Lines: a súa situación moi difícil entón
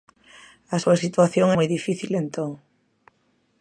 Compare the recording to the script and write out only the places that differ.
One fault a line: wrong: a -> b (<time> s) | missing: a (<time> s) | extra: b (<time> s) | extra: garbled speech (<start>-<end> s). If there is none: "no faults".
no faults